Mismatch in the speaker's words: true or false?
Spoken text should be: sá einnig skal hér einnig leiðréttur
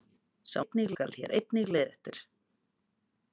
false